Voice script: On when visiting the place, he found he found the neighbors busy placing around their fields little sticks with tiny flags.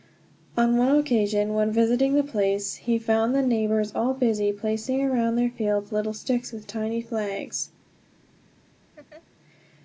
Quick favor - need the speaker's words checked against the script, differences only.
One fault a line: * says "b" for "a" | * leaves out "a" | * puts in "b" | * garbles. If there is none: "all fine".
* puts in "one occasion"
* leaves out "he found"
* puts in "all"